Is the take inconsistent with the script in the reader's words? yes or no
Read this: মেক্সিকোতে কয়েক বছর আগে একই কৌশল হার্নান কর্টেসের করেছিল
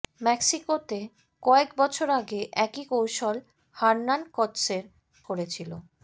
no